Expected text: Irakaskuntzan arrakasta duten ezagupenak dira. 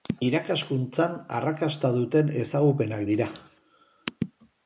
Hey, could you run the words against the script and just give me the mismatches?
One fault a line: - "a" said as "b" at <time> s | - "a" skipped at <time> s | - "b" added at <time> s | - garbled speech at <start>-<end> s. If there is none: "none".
none